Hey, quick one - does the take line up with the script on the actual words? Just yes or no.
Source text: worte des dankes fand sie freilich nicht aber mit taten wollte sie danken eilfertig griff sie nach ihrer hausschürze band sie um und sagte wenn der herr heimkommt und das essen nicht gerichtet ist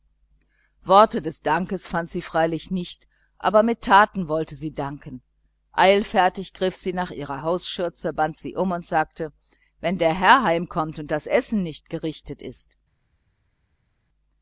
yes